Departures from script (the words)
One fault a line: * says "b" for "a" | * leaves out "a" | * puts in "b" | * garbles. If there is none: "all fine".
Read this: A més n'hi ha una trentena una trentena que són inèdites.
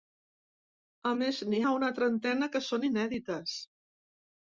* leaves out "una trentena"